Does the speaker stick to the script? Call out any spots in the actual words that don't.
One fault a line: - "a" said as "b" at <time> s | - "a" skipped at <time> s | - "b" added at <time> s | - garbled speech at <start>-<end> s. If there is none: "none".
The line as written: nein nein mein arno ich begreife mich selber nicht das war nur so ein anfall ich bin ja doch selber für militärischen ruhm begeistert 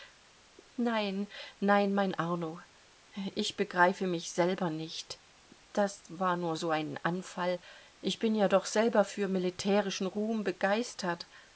none